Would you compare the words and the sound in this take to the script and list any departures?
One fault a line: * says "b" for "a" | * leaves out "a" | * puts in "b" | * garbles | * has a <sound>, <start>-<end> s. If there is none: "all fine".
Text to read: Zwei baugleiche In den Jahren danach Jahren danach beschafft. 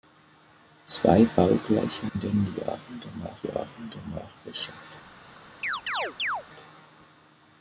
* has a chirp, 5.6-6.4 s